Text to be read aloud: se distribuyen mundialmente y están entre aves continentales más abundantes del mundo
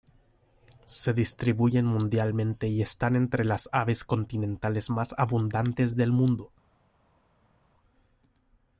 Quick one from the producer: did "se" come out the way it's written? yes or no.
yes